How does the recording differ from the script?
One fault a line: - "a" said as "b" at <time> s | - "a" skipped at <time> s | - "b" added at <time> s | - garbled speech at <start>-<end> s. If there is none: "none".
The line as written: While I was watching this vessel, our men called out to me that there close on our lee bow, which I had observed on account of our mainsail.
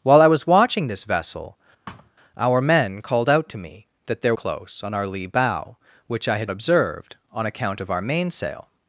none